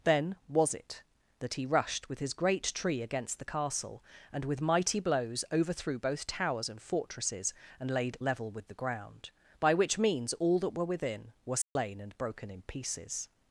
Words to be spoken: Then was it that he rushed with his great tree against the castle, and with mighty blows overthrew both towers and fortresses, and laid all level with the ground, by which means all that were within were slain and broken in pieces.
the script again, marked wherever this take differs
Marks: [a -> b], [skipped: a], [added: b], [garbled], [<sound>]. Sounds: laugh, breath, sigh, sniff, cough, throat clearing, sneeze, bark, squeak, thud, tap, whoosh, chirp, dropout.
Then was it that he rushed with his great tree against the castle, and with mighty blows overthrew both towers and fortresses, and laid [skipped: all] level with the ground, by which means all that were within were slain [dropout] and broken in pieces.